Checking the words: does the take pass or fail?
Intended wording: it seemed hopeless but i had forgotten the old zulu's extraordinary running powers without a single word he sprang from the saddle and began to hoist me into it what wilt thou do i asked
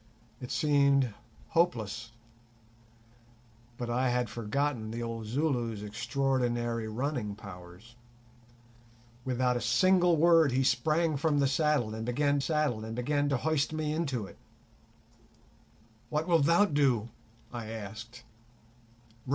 fail